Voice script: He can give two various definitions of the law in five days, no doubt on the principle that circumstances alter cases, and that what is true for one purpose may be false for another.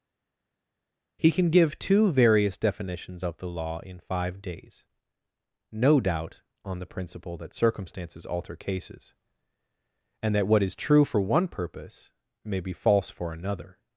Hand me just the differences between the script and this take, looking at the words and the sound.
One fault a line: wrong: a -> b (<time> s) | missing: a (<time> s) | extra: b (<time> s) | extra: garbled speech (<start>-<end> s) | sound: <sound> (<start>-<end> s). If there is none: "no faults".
no faults